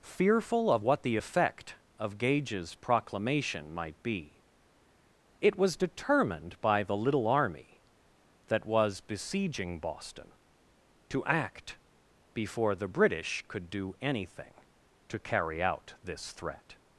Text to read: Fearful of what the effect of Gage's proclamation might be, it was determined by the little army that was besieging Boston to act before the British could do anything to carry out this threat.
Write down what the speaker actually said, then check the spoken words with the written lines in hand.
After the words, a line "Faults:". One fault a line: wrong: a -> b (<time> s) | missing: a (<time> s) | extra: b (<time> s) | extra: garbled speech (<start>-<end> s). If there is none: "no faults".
Fearful of what the effect of Gage's proclamation might be, it was determined by the little army that was besieging Boston to act before the British could do anything to carry out this threat.
Faults:
no faults